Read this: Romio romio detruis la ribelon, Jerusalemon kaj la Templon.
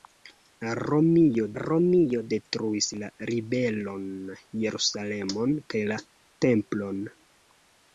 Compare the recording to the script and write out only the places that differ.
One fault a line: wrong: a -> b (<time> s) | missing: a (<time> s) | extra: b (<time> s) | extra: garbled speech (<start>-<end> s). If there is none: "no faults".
no faults